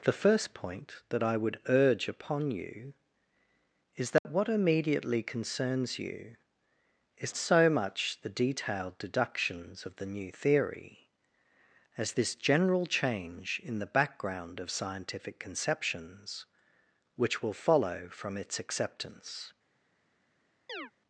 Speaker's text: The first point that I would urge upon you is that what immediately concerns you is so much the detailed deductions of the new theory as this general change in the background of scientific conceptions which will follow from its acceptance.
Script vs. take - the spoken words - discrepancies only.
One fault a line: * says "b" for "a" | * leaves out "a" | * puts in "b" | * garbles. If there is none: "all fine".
all fine